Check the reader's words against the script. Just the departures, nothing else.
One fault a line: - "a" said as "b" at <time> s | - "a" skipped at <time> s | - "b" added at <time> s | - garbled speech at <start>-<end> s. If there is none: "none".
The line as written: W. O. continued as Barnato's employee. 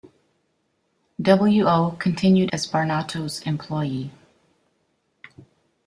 none